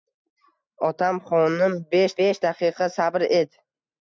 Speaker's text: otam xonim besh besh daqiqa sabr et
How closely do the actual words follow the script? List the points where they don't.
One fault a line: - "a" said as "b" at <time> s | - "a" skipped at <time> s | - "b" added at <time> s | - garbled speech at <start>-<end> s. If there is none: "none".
none